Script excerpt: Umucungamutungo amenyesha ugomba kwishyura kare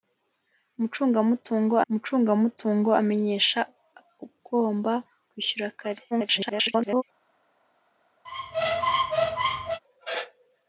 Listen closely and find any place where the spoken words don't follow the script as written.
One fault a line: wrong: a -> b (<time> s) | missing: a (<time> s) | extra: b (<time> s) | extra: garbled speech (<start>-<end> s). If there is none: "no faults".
extra: umucungamutungo (1.9 s)
extra: garbled speech (6.1-7.0 s)